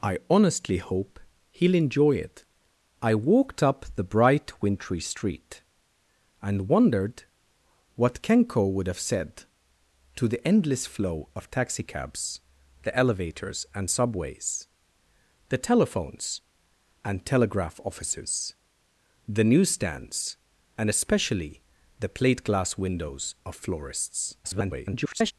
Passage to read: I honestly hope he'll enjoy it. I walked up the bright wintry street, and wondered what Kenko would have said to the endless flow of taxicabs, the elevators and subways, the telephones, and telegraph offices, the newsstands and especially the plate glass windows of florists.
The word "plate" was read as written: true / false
true